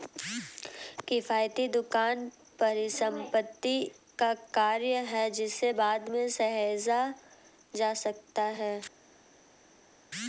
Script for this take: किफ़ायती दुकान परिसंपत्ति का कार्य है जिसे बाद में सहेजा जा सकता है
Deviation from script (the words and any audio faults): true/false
false